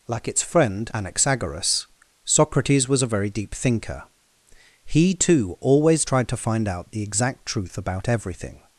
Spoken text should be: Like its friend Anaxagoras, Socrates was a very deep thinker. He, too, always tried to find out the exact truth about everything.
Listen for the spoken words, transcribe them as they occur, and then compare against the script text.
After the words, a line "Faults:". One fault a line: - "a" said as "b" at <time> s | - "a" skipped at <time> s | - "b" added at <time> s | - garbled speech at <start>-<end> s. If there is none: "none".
Like its friend Anaxagoras, Socrates was a very deep thinker. He, too, always tried to find out the exact truth about everything.
Faults:
none